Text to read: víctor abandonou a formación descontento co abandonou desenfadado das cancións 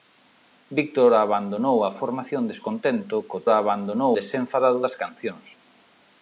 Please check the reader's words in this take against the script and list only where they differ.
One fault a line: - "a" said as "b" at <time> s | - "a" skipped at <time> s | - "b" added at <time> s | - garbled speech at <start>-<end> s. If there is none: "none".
none